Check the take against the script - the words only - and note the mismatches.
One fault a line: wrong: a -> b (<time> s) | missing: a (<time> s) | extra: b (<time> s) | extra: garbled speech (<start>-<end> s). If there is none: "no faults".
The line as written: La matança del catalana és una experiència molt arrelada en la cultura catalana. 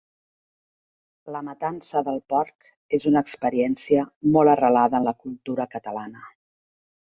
wrong: catalana -> porc (2.3 s)